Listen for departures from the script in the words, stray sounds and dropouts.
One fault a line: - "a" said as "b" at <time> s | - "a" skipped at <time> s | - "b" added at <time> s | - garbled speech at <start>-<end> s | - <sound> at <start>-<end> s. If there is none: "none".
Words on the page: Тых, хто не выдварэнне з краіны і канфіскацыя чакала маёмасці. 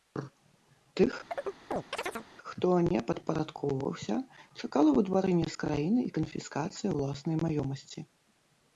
- chirp at 1.3-2.3 s
- "падпарадкоўваўся чакала" added at 3.1 s
- "чакала" said as "ўласнай" at 7.0 s